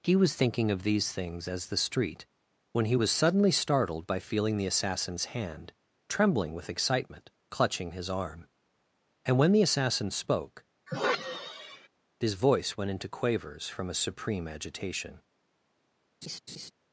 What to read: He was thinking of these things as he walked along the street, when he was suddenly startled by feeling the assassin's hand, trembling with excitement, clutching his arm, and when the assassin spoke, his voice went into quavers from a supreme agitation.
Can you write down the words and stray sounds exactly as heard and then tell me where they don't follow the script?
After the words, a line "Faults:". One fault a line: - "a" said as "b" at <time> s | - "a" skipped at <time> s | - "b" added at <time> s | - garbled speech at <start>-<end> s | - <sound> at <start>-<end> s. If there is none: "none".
He was thinking of these things as the street, when he was suddenly startled by feeling the assassin's hand, trembling with excitement, clutching his arm, and when the assassin spoke, his voice went into quavers from a supreme agitation.
Faults:
- "he walked along" skipped at 1.7 s
- sigh at 10.9-11.9 s
- laugh at 16.2-16.7 s